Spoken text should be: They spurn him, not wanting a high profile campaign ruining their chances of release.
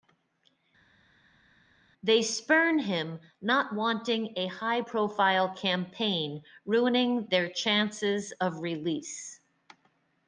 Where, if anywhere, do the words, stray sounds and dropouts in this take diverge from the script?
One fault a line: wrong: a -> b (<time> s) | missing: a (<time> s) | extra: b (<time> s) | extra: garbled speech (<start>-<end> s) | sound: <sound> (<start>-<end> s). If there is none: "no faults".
no faults